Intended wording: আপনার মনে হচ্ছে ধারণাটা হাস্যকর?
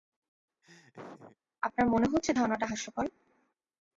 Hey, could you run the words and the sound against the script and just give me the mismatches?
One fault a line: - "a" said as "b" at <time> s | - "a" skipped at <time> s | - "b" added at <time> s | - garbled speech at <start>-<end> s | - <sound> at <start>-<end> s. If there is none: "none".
- laugh at 0.6-1.4 s